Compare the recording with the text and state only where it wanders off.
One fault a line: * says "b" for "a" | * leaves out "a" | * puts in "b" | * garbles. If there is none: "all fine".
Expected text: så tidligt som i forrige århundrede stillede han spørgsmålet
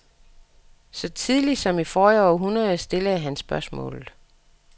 all fine